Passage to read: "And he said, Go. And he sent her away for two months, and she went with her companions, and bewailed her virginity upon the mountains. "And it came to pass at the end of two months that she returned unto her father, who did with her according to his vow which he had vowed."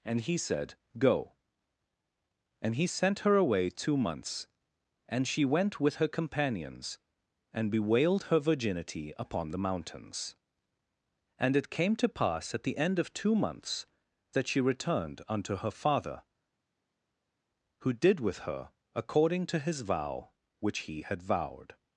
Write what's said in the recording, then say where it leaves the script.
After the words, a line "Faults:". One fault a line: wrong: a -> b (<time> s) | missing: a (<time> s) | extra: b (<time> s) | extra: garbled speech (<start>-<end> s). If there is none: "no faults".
"And he said, Go. And he sent her away two months, and she went with her companions, and bewailed her virginity upon the mountains. "And it came to pass at the end of two months that she returned unto her father, who did with her according to his vow which he had vowed."
Faults:
missing: for (3.7 s)